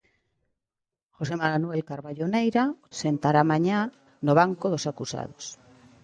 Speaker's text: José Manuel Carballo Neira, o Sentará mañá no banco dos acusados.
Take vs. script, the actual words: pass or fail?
pass